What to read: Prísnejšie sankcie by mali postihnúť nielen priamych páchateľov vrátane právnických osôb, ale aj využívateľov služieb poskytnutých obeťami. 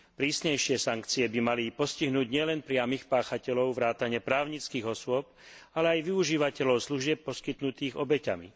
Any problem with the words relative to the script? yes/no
no